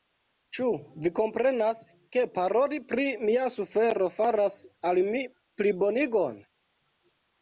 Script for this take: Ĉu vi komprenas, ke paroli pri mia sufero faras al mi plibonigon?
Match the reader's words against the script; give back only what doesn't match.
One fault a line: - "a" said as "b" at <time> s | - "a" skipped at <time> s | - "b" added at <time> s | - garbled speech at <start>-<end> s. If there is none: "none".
none